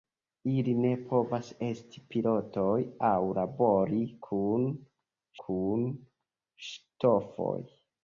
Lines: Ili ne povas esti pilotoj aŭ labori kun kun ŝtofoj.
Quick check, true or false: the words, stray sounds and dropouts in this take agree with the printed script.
true